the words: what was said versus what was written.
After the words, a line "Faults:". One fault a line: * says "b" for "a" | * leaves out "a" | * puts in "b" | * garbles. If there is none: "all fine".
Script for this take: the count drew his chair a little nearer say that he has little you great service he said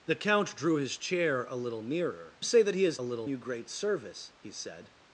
the count drew his chair a little nearer say that he has little you great service he said
Faults:
all fine